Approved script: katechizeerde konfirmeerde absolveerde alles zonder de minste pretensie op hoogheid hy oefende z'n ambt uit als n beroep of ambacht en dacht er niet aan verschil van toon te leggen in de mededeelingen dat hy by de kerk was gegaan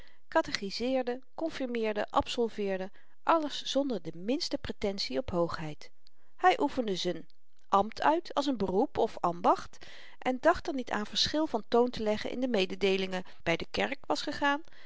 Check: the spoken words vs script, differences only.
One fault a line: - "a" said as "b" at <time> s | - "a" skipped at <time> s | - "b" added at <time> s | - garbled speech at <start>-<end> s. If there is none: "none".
- "dat hy" skipped at 13.2 s